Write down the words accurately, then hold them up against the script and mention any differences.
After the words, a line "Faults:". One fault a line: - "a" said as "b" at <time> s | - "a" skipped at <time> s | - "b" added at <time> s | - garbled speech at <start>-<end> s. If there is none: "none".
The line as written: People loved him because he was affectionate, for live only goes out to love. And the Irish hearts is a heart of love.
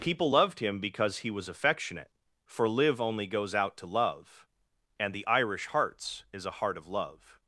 People loved him because he was affectionate, for live only goes out to love. And the Irish hearts is a heart of love.
Faults:
none